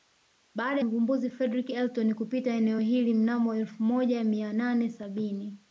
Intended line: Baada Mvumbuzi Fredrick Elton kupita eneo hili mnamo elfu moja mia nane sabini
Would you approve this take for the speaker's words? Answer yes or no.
yes